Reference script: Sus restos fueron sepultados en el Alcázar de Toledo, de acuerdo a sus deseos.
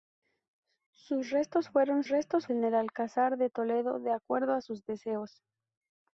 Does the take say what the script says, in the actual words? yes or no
no